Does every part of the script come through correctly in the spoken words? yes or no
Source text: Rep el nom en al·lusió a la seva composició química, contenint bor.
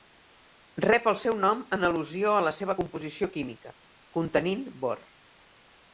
no